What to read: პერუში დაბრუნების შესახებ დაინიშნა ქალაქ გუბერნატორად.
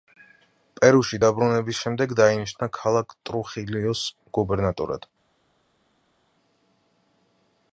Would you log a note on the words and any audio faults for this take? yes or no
yes